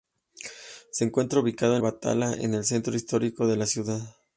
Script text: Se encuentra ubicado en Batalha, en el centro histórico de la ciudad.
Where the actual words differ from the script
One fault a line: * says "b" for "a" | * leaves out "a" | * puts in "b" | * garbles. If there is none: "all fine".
all fine